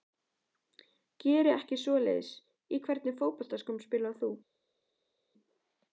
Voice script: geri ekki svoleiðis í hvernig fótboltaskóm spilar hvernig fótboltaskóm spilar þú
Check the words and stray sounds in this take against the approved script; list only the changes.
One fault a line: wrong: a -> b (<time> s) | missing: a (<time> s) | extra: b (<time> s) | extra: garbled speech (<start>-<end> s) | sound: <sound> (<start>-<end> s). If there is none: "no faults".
missing: hvernig fótboltaskóm spilar (4.2 s)